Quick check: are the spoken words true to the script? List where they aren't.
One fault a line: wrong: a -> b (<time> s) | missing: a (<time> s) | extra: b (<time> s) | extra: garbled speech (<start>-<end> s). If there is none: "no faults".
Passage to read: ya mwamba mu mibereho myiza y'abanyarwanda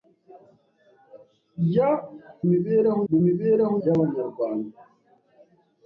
wrong: mwamba -> mibereho (2.5 s)
missing: myiza (3.7 s)